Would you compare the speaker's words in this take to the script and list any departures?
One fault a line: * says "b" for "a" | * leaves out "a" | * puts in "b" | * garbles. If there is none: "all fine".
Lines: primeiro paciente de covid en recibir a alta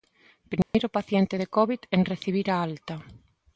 all fine